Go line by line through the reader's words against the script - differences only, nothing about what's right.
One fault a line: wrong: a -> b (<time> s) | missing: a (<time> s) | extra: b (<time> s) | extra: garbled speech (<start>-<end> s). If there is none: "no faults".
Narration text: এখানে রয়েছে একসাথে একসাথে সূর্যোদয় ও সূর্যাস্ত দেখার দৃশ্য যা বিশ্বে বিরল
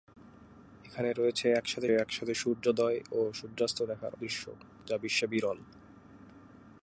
no faults